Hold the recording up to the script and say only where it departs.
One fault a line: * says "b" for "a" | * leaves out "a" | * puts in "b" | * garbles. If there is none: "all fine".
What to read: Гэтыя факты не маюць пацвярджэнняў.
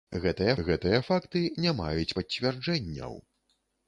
* puts in "гэтыя"